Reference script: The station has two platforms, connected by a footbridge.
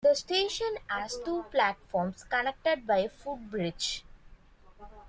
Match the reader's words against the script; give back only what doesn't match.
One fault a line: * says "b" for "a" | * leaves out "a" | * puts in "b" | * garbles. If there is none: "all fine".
all fine